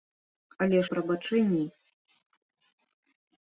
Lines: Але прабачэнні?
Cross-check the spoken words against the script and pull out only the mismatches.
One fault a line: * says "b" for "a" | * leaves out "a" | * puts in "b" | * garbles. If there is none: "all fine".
all fine